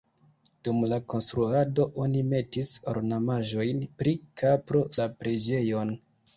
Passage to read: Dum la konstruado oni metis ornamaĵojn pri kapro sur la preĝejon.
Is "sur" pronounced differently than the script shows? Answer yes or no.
yes